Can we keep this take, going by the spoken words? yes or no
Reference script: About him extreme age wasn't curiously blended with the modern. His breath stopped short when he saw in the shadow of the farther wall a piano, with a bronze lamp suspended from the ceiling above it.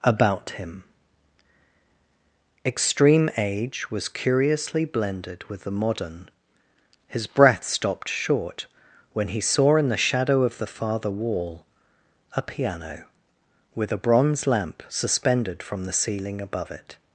no